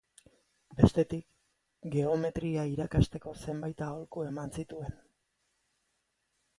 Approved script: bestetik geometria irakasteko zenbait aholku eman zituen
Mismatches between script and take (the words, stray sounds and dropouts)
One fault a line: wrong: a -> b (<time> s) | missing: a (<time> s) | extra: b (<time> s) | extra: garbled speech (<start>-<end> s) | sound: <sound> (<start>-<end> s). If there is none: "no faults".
no faults